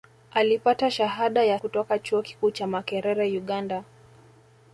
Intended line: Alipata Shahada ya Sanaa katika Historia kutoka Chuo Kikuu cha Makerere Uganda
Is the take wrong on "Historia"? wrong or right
wrong